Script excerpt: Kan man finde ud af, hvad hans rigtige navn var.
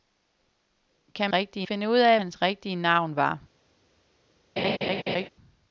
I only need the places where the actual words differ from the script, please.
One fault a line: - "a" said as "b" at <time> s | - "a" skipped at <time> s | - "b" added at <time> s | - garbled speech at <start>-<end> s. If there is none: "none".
- "man" said as "rigtige" at 1.3 s
- "hvad" skipped at 2.2 s